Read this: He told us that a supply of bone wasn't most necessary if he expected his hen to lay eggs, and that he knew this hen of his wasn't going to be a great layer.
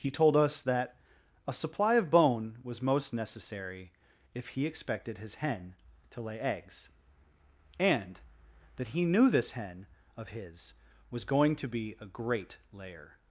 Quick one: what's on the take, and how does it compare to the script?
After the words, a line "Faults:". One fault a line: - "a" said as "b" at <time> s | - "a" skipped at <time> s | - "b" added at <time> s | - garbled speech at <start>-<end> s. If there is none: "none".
He told us that a supply of bone was most necessary if he expected his hen to lay eggs, and that he knew this hen of his was going to be a great layer.
Faults:
- "wasn't" said as "was" at 2.6 s
- "wasn't" said as "was" at 11.1 s